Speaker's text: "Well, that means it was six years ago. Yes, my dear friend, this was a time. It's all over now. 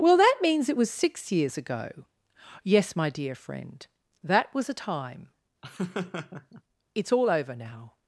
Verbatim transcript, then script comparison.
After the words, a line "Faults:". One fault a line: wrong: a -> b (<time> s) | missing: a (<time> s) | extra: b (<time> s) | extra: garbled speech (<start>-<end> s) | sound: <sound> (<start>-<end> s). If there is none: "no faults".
"Well, that means it was six years ago. Yes, my dear friend, that was a time. It's all over now.
Faults:
wrong: this -> that (4.2 s)
sound: laugh (5.6-6.6 s)